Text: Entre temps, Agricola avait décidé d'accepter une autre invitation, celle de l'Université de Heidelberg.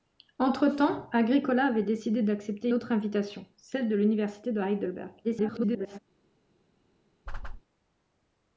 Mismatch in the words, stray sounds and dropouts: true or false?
true